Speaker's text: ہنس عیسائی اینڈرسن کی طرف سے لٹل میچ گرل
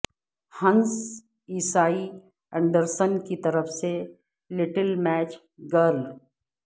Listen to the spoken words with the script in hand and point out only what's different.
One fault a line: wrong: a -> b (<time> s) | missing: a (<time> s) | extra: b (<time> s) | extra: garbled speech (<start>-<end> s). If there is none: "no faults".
no faults